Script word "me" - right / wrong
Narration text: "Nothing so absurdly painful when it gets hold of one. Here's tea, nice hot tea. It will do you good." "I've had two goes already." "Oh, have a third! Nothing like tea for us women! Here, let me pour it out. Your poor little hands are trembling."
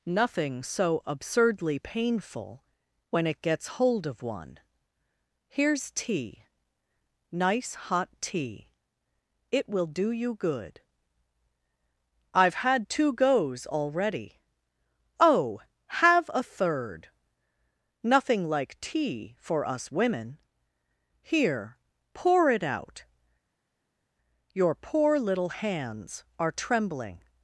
wrong